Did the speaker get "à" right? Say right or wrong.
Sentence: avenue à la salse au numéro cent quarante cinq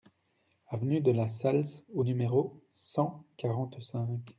wrong